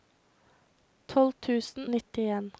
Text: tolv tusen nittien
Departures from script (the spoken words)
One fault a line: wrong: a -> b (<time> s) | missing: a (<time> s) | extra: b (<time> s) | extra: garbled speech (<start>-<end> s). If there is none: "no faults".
no faults